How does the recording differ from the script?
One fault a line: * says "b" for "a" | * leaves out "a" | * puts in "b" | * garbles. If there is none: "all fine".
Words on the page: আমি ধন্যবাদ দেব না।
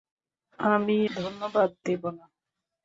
all fine